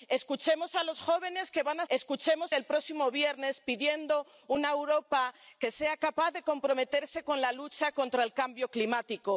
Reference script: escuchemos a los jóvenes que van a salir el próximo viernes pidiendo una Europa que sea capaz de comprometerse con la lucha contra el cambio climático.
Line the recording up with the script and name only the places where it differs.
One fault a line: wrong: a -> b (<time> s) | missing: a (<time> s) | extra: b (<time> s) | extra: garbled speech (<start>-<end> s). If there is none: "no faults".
wrong: salir -> escuchemos (1.9 s)